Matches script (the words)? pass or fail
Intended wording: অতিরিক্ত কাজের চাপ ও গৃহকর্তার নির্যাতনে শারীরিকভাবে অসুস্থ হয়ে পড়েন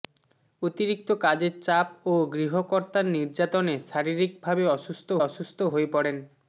fail